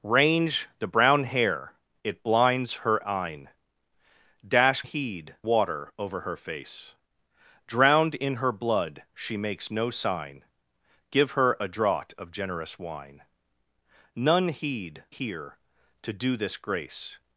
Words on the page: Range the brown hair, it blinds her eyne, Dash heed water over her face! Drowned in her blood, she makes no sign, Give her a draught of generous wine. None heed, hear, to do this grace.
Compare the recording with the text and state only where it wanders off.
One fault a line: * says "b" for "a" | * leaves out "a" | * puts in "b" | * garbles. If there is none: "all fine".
all fine